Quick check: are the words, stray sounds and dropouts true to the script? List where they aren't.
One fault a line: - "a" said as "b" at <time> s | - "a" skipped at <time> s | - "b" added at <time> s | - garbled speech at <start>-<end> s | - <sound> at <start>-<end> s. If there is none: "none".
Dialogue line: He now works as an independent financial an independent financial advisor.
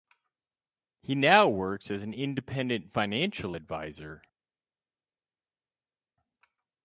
- "an independent financial" skipped at 3.6 s